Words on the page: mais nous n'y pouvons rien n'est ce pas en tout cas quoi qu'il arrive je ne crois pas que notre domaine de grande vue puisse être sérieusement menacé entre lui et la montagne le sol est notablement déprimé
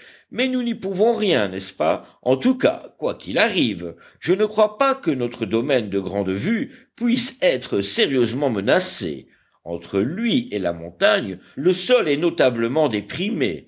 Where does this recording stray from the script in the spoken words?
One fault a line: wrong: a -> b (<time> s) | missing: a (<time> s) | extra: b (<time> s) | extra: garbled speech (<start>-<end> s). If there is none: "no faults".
no faults